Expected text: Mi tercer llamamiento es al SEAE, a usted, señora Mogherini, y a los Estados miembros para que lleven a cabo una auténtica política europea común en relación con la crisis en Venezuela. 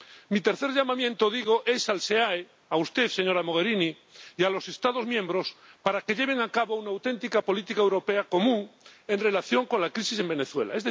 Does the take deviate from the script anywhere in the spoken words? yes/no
no